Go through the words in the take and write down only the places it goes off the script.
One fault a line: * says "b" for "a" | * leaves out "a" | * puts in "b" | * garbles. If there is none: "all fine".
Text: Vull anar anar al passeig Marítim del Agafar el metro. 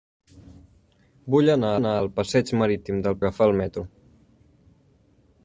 all fine